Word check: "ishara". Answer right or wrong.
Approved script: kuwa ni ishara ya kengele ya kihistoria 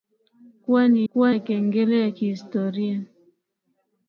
wrong